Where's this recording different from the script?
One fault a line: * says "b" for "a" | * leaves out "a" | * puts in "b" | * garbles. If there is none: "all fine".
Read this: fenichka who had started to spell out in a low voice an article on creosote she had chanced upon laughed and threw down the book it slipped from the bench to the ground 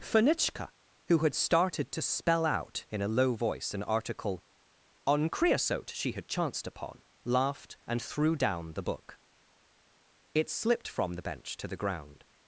all fine